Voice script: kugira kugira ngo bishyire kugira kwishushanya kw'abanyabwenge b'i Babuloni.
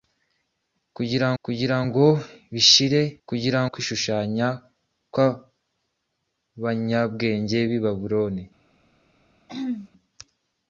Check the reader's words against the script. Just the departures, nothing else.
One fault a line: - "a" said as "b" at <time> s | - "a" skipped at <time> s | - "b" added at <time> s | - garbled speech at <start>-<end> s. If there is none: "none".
none